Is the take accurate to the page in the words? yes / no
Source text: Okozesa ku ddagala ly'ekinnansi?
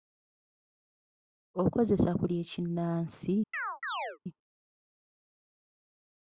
no